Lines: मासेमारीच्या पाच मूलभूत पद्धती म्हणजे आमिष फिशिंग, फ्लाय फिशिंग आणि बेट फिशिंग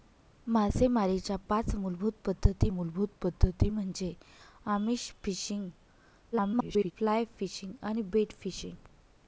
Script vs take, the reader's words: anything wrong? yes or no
yes